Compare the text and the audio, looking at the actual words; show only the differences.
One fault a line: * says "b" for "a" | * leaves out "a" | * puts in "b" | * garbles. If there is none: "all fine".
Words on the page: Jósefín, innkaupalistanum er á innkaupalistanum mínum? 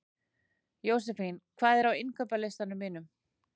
* says "hvað" for "innkaupalistanum"